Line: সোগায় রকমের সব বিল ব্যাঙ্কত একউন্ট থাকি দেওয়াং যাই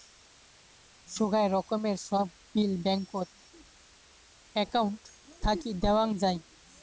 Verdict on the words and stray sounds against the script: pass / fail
pass